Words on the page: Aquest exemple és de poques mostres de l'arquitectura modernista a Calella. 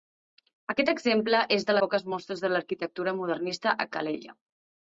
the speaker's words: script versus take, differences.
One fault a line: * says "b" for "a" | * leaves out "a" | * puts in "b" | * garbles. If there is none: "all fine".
all fine